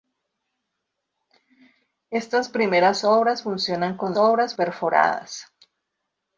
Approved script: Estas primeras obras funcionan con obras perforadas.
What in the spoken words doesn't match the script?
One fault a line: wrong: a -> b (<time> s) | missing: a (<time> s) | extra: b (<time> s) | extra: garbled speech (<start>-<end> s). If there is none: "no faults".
no faults